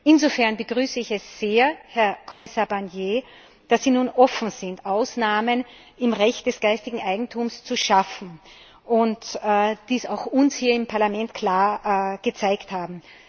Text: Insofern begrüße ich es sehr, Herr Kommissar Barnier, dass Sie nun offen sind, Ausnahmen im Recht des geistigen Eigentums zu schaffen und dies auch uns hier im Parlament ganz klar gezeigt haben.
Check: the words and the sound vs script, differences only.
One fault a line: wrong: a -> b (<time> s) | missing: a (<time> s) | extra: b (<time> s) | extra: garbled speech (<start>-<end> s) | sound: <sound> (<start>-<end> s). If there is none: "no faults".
sound: dropout (2.3-2.5 s)
missing: ganz (11.3 s)